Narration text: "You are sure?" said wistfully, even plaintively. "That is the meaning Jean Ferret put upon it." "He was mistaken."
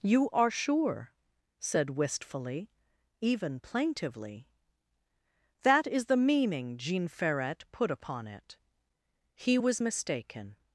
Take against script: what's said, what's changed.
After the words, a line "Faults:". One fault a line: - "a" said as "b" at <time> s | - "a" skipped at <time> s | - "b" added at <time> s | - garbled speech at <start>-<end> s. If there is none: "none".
"You are sure?" said wistfully, even plaintively. "That is the meaning Jean Ferret put upon it." "He was mistaken."
Faults:
none